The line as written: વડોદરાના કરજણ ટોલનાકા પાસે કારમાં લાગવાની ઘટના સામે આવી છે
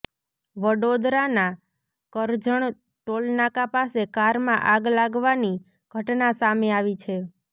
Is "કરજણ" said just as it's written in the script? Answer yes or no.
yes